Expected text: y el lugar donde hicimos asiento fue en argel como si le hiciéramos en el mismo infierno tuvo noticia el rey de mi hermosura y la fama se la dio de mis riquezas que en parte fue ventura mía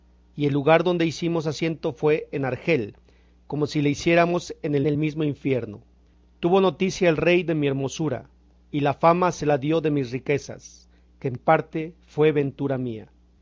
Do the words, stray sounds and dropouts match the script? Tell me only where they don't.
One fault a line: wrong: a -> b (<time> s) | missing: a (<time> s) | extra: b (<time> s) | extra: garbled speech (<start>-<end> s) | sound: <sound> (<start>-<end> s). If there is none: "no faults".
extra: el (4.9 s)